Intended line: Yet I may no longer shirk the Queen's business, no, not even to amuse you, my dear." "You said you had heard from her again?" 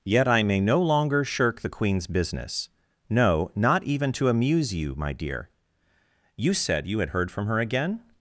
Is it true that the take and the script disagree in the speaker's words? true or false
false